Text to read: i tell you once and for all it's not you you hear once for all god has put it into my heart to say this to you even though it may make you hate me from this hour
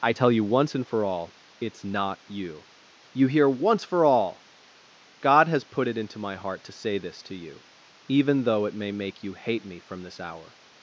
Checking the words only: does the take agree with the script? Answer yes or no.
yes